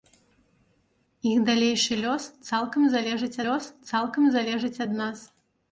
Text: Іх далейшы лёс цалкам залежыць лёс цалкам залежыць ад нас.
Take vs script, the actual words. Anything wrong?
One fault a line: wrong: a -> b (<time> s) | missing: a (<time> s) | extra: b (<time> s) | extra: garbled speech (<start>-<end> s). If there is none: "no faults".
no faults